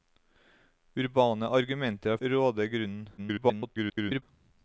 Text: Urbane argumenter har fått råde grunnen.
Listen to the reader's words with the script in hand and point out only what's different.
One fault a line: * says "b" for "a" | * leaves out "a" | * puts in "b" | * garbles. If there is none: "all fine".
* leaves out "fått"
* garbles